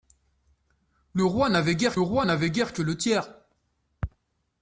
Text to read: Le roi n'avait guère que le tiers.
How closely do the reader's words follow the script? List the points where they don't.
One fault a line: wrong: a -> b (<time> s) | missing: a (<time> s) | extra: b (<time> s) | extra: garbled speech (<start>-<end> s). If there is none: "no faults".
extra: roi n'avait guère (2.0 s)